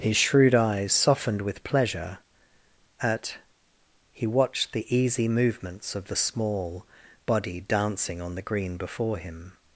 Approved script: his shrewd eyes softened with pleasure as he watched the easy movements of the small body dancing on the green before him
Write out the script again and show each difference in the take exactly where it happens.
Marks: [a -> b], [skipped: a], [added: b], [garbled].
his shrewd eyes softened with pleasure [as -> at] he watched the easy movements of the small body dancing on the green before him